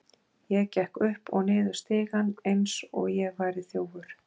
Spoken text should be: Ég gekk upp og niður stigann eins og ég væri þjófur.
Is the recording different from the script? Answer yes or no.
no